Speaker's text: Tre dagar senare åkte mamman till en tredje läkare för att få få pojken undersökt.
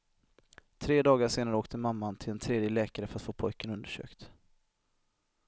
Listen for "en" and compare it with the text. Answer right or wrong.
right